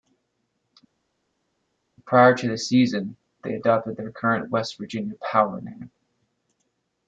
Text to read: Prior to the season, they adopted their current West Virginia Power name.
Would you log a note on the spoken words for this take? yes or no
no